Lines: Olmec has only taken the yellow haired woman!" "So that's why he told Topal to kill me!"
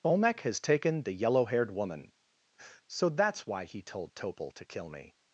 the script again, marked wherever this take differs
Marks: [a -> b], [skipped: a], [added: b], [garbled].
Olmec has [skipped: only] taken the yellow haired woman!" "So that's why he told Topal to kill me!"